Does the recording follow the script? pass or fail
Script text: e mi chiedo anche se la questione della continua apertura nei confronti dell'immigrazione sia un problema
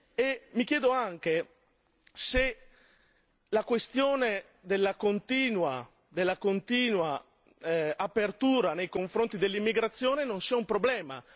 fail